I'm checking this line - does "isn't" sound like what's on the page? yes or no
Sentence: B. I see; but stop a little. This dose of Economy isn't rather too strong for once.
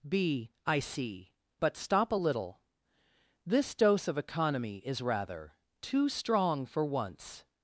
no